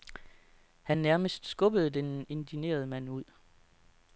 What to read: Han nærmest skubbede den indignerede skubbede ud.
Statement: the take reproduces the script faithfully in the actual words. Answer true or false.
false